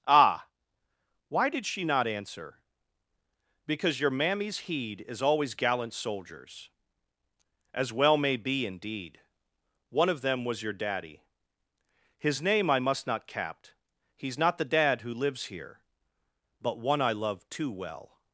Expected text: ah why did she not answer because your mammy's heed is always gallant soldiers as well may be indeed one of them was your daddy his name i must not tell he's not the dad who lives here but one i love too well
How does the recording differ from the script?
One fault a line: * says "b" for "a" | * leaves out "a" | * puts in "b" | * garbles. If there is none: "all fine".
* says "capt" for "tell"